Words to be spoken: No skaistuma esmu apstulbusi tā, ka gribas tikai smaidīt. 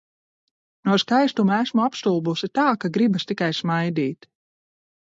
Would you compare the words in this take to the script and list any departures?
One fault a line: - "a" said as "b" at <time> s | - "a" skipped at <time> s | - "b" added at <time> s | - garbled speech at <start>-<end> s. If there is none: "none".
none